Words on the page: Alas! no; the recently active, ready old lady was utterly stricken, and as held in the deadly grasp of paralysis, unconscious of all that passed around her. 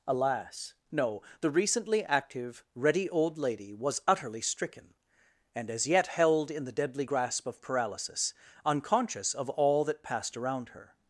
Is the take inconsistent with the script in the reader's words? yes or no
yes